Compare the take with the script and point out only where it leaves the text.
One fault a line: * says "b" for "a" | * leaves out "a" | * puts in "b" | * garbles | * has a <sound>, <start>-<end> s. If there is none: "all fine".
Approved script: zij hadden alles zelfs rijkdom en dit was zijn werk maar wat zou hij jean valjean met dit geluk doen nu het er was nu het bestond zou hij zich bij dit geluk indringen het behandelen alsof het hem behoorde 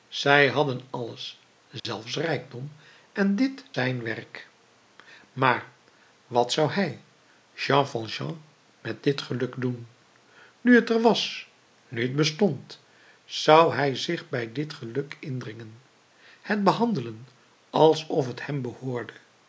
* has a dropout, 1.8-1.8 s
* leaves out "was"